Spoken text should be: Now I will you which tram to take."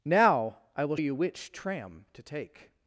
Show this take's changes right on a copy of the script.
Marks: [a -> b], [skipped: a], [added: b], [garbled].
Now I will you which tram to take."